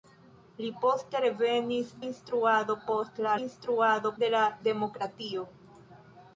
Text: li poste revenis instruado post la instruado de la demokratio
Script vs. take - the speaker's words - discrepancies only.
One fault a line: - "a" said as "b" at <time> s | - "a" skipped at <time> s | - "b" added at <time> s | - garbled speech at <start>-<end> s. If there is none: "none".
none